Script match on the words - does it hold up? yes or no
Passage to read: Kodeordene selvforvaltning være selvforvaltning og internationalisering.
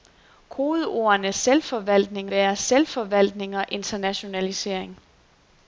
yes